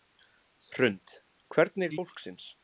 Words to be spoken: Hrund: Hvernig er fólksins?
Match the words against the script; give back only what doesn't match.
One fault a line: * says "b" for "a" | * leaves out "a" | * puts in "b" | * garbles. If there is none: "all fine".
all fine